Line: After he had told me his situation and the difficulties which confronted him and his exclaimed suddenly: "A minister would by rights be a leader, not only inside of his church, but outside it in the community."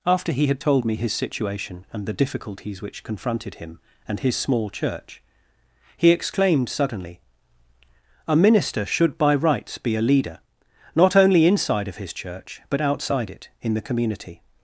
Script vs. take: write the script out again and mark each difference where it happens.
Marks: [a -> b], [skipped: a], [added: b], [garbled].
After he had told me his situation and the difficulties which confronted him and his [added: small church he] exclaimed suddenly: "A minister [would -> should] by rights be a leader, not only inside of his church, but outside it in the community."